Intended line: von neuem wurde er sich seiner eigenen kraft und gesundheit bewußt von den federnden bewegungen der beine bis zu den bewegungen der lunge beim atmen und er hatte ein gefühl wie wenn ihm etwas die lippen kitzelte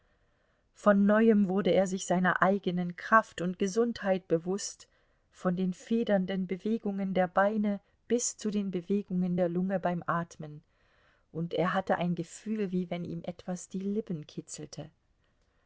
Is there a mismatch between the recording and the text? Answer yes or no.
no